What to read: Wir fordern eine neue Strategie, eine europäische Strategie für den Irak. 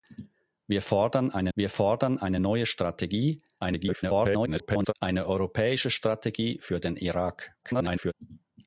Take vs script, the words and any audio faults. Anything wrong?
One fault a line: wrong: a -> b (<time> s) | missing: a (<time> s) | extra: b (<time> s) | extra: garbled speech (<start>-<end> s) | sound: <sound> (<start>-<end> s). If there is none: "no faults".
extra: wir fordern eine (1.5 s)
extra: garbled speech (3.6-4.9 s)
extra: garbled speech (7.6-8.1 s)